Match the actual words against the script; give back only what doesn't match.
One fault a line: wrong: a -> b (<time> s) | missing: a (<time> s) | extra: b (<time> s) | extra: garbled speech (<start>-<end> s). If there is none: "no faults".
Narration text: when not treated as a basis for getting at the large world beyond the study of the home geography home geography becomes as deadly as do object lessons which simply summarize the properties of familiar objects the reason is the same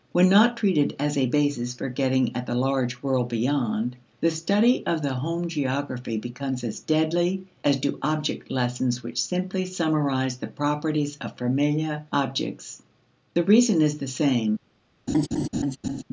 missing: home geography (6.2 s)